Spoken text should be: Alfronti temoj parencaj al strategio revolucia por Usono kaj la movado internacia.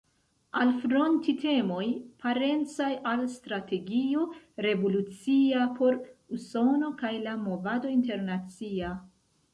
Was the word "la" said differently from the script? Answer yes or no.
no